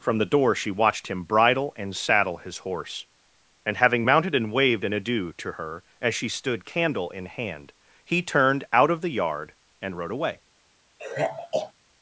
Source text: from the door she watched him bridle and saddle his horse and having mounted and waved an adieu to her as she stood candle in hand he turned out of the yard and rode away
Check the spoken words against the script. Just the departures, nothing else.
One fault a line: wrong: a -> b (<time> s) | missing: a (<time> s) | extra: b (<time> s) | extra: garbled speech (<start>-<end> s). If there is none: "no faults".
no faults